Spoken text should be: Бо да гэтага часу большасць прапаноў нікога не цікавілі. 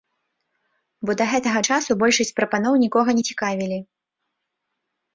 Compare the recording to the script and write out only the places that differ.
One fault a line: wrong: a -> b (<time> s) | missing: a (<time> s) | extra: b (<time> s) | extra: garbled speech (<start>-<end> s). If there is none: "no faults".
no faults